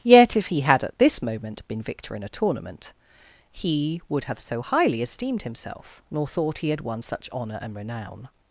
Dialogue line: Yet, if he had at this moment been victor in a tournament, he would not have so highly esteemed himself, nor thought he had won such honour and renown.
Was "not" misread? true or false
true